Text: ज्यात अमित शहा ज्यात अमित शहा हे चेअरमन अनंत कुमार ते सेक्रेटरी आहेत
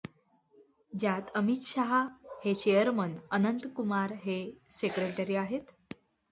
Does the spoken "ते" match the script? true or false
false